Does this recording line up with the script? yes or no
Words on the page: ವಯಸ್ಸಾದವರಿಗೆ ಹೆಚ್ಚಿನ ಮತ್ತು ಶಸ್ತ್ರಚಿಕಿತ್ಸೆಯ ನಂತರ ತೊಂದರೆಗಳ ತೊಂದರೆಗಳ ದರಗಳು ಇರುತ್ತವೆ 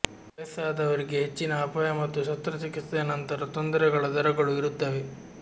no